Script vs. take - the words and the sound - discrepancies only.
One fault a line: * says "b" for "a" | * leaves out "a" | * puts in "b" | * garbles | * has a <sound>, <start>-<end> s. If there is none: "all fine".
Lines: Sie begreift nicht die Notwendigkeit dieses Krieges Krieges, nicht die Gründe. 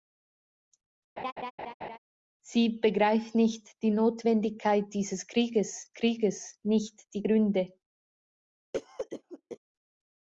* has a laugh, 1.2-2.0 s
* has a cough, 8.7-9.6 s